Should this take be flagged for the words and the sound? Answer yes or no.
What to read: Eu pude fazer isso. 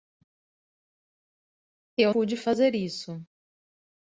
no